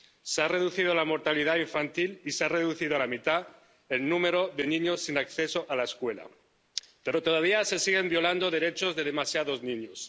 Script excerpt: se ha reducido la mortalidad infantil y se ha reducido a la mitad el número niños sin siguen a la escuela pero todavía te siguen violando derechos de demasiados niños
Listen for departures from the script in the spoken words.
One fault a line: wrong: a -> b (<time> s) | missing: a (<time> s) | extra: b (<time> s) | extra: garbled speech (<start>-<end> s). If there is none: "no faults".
extra: de (4.5 s)
wrong: siguen -> acceso (5.2 s)
wrong: te -> se (7.6 s)